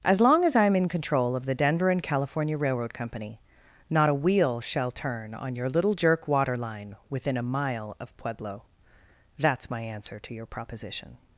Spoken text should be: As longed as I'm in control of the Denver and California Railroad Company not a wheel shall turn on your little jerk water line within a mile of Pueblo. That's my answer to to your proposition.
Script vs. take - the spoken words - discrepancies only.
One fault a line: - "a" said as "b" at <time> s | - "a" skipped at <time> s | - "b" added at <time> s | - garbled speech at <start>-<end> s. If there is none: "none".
- "longed" said as "long" at 0.2 s
- "to" skipped at 10.3 s